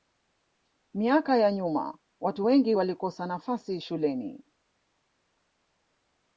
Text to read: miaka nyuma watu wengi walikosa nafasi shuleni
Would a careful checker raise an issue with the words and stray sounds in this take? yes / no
yes